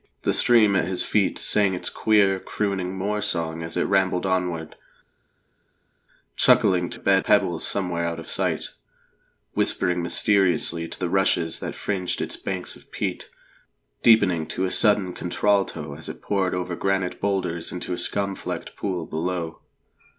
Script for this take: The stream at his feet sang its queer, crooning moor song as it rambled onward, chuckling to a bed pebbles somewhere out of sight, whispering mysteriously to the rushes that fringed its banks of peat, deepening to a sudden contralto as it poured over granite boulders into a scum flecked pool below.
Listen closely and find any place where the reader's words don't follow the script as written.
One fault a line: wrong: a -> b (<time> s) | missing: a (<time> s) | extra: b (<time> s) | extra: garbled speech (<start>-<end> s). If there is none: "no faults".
no faults